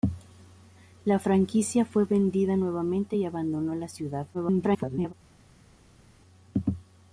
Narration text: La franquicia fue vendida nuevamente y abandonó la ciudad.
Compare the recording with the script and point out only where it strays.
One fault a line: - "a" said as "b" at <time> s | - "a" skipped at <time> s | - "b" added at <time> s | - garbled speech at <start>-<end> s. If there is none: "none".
- garbled speech at 4.3-5.1 s